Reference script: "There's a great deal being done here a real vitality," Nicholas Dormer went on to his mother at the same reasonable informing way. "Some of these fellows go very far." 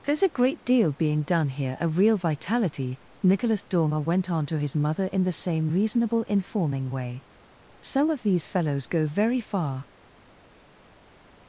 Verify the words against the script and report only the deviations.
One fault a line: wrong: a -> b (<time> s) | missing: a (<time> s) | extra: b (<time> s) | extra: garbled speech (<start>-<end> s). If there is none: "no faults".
wrong: at -> in (5.0 s)